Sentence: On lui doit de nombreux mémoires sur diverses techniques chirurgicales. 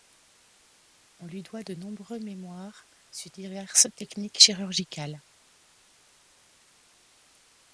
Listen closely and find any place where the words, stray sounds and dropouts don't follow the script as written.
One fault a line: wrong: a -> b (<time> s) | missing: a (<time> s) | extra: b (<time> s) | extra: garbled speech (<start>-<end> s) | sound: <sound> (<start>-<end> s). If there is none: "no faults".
no faults